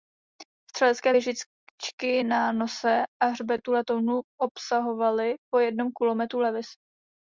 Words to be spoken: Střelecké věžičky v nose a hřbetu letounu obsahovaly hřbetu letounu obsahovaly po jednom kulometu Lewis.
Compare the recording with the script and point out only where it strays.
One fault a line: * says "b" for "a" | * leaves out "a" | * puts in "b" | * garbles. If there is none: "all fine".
* says "na" for "v"
* leaves out "hřbetu letounu obsahovaly"